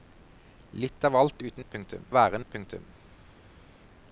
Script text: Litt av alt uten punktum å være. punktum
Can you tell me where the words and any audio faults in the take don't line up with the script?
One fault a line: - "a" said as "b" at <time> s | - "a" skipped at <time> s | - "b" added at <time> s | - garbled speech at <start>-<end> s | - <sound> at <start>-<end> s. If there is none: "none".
none